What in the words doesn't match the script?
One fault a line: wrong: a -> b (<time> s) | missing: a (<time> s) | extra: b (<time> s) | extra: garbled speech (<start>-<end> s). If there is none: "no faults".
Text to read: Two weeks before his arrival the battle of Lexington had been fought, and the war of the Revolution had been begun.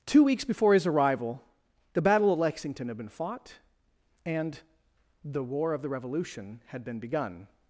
no faults